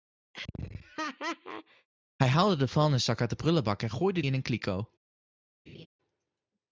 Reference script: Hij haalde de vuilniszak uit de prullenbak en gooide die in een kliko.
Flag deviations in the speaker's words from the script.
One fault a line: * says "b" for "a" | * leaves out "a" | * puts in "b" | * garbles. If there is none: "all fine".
* leaves out "die"